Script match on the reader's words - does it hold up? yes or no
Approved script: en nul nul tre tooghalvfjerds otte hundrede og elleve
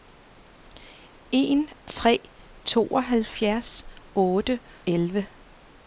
no